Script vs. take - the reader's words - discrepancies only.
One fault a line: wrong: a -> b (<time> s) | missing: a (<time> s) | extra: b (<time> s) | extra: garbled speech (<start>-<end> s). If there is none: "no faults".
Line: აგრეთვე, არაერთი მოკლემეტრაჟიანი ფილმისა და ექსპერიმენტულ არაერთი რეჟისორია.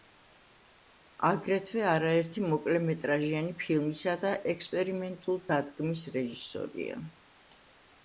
wrong: არაერთი -> დადგმის (5.5 s)